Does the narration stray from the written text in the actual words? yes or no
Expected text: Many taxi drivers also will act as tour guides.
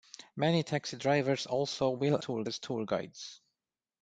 yes